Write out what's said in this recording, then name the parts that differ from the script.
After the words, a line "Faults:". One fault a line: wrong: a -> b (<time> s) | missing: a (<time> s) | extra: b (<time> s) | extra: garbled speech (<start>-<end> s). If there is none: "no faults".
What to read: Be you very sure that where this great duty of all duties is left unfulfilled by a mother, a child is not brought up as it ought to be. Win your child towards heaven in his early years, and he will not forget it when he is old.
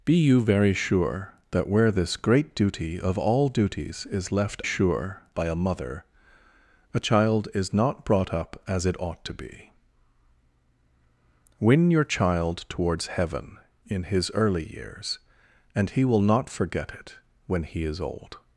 Be you very sure that where this great duty of all duties is left sure by a mother, a child is not brought up as it ought to be. Win your child towards heaven in his early years, and he will not forget it when he is old.
Faults:
wrong: unfulfilled -> sure (4.6 s)